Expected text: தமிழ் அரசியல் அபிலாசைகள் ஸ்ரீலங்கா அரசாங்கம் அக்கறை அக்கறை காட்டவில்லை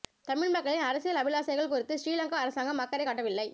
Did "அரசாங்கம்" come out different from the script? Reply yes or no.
no